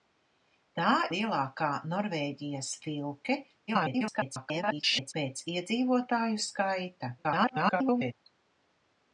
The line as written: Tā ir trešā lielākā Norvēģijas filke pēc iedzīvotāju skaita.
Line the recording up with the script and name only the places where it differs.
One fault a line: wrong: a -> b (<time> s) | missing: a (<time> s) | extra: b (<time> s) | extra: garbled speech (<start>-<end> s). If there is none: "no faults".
missing: ir trešā (0.9 s)
extra: garbled speech (3.7-5.1 s)
extra: garbled speech (7.2-8.1 s)